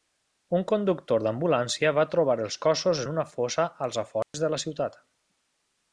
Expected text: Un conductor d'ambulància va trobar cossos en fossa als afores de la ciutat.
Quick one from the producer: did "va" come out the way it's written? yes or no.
yes